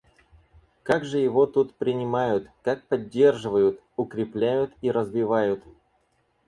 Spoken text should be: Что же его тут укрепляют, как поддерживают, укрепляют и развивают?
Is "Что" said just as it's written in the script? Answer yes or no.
no